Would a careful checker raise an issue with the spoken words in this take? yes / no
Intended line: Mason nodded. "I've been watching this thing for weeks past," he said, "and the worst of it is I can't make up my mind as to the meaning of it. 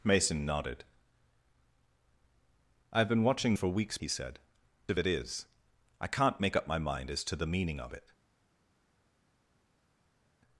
yes